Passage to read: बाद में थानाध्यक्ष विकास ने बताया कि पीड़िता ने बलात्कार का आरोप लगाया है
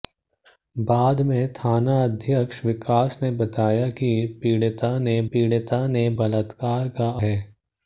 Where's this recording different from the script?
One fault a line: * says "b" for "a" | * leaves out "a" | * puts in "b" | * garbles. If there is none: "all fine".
* puts in "पीड़िता ने"
* leaves out "आरोप लगाया"